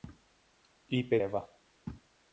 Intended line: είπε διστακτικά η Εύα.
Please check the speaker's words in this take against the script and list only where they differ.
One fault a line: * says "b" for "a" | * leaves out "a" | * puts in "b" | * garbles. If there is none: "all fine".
* leaves out "διστακτικά η"